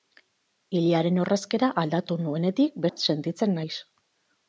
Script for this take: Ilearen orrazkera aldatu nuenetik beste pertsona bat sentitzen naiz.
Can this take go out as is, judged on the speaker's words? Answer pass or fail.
fail